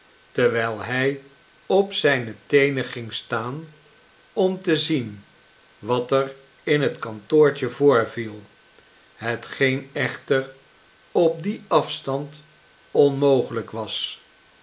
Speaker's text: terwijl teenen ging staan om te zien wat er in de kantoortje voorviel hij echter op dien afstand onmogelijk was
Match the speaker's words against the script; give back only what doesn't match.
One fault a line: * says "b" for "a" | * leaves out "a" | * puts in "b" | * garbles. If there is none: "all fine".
* puts in "hij op zijne"
* says "het" for "de"
* says "hetgeen" for "hij"